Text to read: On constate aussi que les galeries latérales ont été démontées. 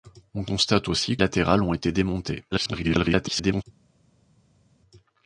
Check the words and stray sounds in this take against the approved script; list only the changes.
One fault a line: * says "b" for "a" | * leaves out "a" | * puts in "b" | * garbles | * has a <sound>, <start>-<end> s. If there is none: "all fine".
* leaves out "que les galeries"
* garbles